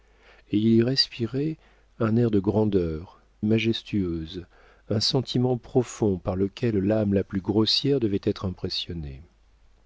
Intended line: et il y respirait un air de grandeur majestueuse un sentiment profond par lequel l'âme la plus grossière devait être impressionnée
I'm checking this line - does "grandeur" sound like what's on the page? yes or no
yes